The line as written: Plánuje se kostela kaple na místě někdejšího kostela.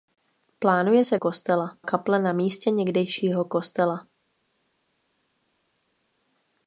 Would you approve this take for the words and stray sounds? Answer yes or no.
yes